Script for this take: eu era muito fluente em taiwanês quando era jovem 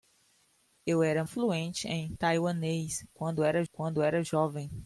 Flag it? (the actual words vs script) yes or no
yes